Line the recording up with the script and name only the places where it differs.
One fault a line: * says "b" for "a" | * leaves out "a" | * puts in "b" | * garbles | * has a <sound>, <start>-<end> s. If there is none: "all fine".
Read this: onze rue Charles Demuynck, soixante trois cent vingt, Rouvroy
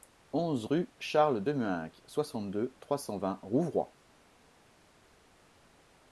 * puts in "deux"